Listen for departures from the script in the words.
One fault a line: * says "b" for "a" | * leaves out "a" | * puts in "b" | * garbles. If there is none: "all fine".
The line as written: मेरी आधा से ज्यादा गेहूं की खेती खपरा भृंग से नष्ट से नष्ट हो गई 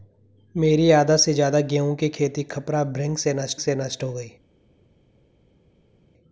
all fine